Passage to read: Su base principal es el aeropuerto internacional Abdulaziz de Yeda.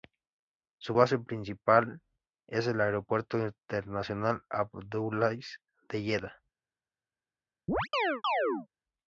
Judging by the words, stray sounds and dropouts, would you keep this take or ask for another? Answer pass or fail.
fail